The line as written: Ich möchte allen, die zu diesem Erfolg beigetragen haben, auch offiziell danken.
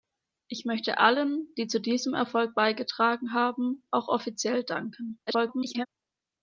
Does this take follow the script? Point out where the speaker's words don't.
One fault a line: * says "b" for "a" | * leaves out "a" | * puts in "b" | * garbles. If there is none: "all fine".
* garbles